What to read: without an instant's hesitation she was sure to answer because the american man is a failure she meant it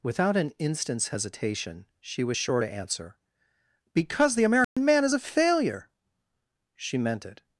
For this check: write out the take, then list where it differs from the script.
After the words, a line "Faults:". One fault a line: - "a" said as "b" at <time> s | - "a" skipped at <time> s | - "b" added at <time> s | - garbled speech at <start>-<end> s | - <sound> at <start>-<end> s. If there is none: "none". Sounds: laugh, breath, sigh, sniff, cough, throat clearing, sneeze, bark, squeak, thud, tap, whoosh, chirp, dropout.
without an instant's hesitation she was sure to answer because the american man is a failure she meant it
Faults:
- dropout at 4.6-4.8 s